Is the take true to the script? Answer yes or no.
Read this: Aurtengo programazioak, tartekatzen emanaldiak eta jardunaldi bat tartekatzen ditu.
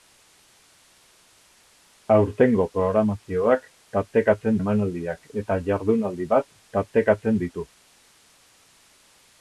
yes